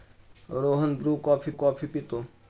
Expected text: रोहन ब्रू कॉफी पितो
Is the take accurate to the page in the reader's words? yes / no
no